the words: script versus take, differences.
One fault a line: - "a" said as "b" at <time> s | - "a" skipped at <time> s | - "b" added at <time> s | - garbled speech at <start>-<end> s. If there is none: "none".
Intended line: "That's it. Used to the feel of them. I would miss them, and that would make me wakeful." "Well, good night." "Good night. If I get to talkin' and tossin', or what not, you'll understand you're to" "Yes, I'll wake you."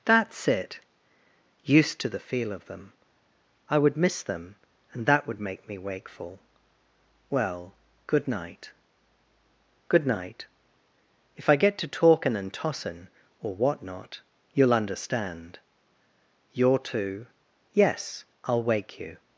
none